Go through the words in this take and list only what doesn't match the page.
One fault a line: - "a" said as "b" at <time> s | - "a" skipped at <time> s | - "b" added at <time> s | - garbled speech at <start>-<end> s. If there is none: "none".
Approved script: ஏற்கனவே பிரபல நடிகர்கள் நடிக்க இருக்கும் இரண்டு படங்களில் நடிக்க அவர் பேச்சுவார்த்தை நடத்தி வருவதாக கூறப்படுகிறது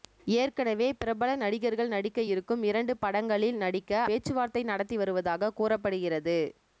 - "அவர்" skipped at 4.0 s